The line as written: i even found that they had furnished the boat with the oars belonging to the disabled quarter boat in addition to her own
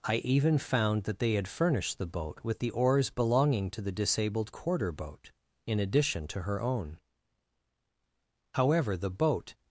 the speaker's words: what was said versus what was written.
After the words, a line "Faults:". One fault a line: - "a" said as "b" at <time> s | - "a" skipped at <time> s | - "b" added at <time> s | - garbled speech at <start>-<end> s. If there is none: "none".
i even found that they had furnished the boat with the oars belonging to the disabled quarter boat in addition to her own however the boat
Faults:
- "however the boat" added at 8.5 s